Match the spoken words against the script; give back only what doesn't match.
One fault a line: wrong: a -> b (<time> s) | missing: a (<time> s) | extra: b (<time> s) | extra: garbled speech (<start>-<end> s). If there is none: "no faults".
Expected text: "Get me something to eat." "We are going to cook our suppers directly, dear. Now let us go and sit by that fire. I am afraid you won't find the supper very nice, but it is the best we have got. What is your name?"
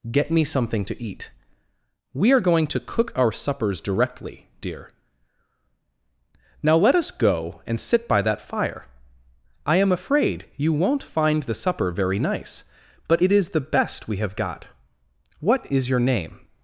no faults